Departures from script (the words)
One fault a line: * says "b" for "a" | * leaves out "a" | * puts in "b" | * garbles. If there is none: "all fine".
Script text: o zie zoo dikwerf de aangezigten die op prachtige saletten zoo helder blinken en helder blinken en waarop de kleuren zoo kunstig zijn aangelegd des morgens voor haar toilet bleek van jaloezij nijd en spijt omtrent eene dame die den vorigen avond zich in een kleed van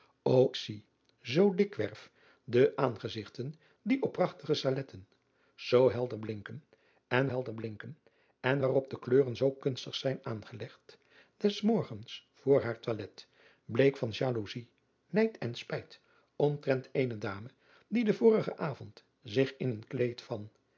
all fine